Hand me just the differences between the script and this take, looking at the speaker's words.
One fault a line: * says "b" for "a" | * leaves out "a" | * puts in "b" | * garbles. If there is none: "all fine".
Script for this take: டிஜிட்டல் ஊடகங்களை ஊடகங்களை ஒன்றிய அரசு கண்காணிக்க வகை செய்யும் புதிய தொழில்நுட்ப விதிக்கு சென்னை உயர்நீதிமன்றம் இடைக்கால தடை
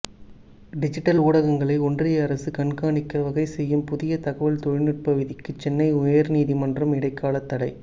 * leaves out "ஊடகங்களை"
* puts in "தகவல்"